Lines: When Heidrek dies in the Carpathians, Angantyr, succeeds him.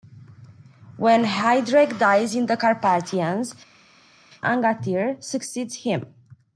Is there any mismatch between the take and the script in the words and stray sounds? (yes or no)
no